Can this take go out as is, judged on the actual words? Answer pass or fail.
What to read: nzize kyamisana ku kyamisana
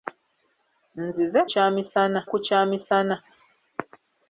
pass